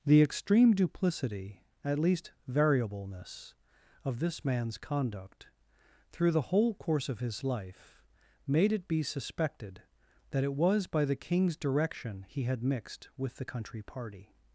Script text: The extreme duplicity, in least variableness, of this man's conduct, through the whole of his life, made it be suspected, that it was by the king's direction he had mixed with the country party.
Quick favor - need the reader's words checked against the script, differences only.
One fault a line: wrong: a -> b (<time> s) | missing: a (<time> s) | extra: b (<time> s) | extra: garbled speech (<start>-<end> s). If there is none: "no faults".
wrong: in -> at (1.9 s)
extra: course (6.7 s)